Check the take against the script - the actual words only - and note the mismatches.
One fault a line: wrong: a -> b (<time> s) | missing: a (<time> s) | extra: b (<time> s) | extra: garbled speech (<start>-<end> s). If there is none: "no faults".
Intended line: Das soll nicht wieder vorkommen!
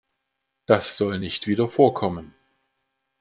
no faults